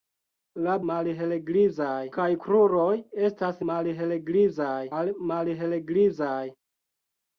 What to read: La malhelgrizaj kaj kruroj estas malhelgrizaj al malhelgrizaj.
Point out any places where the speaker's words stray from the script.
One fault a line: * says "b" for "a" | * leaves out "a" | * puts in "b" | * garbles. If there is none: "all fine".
all fine